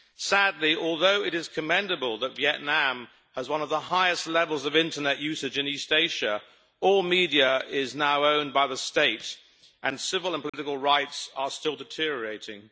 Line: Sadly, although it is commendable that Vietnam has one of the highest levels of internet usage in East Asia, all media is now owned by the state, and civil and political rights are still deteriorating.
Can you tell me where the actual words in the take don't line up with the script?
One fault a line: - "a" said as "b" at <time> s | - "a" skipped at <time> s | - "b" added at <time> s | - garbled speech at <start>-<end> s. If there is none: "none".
none